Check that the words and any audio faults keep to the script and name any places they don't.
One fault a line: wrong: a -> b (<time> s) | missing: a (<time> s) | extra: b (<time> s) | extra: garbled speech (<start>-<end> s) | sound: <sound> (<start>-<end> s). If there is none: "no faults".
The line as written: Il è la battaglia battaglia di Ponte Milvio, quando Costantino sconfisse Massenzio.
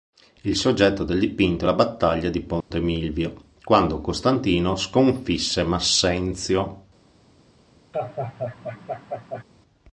extra: soggetto del dipinto (0.6 s)
missing: battaglia (2.3 s)
sound: dropout (2.6-2.7 s)
sound: laugh (7.9-9.4 s)